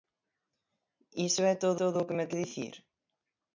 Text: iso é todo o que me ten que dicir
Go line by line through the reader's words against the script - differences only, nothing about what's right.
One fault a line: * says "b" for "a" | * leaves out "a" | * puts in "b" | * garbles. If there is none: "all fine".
* puts in "todo"
* leaves out "ten"